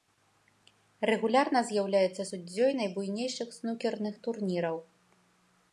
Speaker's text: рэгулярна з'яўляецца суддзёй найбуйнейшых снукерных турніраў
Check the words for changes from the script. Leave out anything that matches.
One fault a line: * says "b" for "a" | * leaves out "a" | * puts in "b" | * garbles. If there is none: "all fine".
all fine